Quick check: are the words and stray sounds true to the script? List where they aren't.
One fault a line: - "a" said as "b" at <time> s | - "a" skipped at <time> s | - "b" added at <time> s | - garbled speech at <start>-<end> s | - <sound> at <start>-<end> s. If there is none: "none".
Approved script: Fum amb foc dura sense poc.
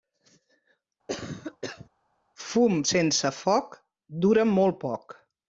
- cough at 1.1-1.9 s
- "amb" said as "sense" at 2.9 s
- "sense" said as "molt" at 4.5 s